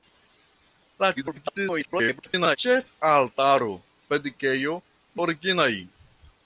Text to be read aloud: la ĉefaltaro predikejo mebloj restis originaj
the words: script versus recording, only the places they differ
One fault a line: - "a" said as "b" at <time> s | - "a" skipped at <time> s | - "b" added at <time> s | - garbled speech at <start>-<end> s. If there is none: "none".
- garbled speech at 1.1-2.6 s
- "mebloj restis" skipped at 4.7 s